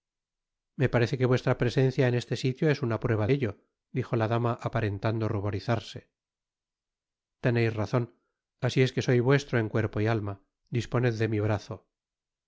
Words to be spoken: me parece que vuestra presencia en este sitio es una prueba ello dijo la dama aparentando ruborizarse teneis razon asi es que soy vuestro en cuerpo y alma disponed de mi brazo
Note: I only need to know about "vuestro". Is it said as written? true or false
true